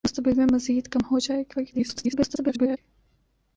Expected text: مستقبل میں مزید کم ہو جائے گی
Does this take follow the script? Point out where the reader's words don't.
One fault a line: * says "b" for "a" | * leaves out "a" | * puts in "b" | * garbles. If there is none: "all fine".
* garbles